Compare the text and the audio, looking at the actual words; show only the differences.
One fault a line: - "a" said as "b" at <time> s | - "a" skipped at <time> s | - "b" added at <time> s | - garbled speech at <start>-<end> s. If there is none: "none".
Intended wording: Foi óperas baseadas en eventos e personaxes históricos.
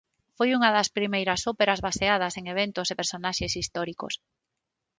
- "unha das primeiras" added at 0.6 s